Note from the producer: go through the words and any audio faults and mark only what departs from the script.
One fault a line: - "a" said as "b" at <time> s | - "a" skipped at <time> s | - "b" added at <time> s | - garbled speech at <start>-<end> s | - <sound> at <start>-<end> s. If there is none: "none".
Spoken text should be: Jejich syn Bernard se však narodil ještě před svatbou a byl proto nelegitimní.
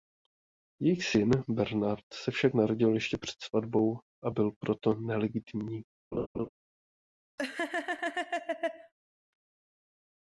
- laugh at 6.1-6.5 s
- laugh at 7.4-8.9 s